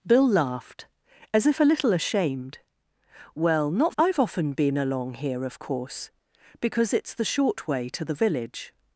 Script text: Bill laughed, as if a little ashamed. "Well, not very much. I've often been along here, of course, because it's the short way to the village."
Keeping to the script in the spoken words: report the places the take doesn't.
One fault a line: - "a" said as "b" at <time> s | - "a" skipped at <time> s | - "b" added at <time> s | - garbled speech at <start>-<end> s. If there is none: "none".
- "very much" skipped at 3.9 s